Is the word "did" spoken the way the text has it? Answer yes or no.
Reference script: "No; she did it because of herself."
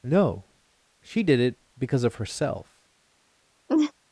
yes